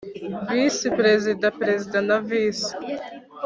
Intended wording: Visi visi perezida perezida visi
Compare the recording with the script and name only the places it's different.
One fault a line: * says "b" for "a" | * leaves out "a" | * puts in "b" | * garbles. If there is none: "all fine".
* says "perezida" for "visi"
* says "na" for "perezida"